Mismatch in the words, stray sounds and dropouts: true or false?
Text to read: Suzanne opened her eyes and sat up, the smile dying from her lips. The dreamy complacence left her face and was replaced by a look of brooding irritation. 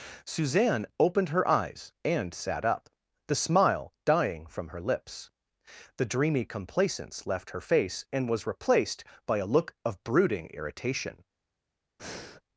true